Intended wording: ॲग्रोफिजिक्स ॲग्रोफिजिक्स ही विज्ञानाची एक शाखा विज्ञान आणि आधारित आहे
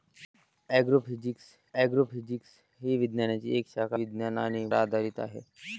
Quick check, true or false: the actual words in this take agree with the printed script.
true